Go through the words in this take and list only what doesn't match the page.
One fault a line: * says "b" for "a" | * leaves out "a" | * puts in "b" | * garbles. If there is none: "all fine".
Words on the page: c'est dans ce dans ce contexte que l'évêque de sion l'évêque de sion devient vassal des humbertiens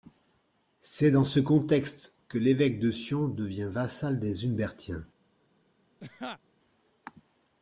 * leaves out "dans ce"
* leaves out "l'évêque de sion"